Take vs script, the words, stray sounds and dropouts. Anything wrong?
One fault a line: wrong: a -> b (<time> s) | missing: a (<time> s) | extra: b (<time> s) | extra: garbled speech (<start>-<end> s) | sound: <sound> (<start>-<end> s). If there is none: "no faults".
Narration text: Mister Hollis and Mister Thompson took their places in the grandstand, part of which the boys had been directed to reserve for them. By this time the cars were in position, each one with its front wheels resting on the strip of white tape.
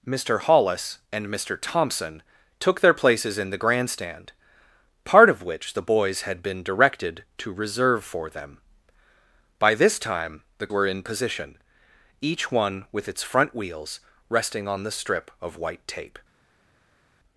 missing: cars (10.7 s)